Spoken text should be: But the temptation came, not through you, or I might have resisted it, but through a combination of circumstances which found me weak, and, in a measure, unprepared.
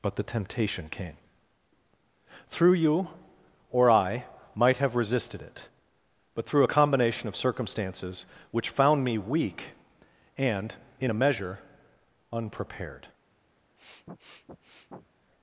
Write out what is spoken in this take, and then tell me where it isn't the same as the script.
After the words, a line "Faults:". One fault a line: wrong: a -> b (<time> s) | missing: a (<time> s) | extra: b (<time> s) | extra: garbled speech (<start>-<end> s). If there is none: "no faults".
But the temptation came, through you, or I might have resisted it, but through a combination of circumstances which found me weak, and, in a measure, unprepared.
Faults:
missing: not (1.2 s)